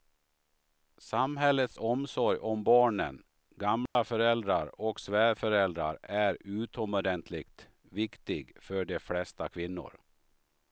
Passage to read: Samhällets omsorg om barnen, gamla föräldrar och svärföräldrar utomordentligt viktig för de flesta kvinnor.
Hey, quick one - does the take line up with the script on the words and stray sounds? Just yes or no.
no